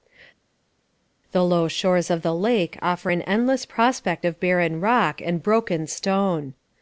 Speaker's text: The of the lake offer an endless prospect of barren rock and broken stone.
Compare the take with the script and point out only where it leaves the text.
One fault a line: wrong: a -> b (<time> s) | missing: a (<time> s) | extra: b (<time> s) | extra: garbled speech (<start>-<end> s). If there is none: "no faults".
extra: low shores (1.4 s)